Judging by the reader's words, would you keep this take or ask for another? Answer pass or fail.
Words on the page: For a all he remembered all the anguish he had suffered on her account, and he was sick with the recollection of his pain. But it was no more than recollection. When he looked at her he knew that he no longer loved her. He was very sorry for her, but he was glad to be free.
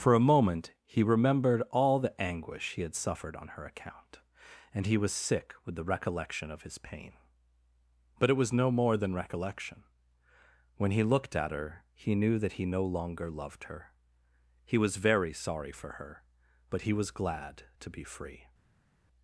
fail